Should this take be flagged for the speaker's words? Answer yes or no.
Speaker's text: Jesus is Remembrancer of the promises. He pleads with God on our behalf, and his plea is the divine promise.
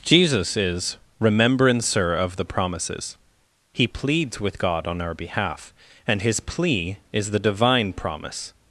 no